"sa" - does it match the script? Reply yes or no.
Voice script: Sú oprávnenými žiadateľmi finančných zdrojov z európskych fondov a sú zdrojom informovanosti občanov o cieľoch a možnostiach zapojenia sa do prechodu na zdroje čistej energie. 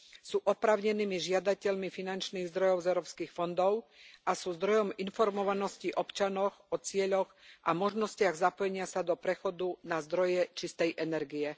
yes